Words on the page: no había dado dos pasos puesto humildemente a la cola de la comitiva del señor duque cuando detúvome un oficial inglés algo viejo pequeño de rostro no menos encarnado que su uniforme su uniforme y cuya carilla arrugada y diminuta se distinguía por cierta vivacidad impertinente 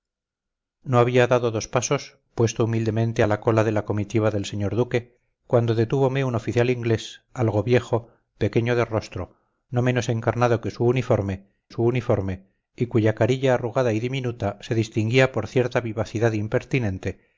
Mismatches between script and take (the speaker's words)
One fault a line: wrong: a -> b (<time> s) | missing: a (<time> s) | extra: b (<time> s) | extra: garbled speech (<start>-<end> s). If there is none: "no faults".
no faults